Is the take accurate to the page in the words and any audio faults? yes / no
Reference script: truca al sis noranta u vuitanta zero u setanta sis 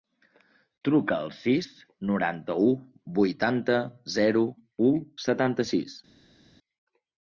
yes